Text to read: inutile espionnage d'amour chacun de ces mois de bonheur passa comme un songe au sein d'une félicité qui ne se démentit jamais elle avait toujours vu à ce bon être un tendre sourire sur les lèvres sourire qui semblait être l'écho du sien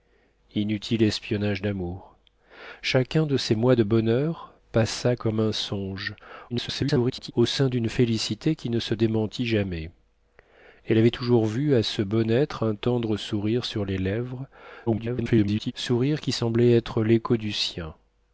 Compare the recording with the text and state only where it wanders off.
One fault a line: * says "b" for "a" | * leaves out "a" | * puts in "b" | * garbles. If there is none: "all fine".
* garbles
* garbles